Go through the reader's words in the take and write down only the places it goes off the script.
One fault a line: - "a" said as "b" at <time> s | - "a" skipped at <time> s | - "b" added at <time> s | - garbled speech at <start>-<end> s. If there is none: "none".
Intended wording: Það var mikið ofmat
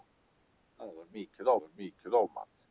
- "var mikið" added at 1.6 s